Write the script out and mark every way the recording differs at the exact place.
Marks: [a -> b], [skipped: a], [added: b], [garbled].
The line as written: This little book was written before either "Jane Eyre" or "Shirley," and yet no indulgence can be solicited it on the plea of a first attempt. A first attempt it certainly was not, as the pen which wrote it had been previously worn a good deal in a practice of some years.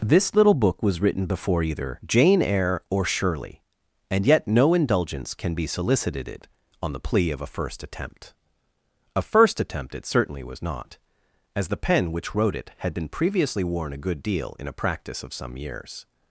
This little book was written before either "Jane Eyre" or "Shirley," and yet no indulgence can be solicited it on the plea of a first attempt. A first attempt it certainly was not, as the pen which wrote it had been previously worn a good deal in a practice of some years.